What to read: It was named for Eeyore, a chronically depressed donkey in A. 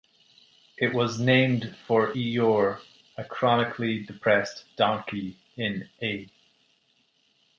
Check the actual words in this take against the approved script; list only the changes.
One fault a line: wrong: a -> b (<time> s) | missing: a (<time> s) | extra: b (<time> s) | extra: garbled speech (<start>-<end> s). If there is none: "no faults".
no faults